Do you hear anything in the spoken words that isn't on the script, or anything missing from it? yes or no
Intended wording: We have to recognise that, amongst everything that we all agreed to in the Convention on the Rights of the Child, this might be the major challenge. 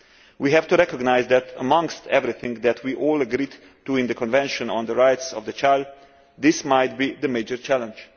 no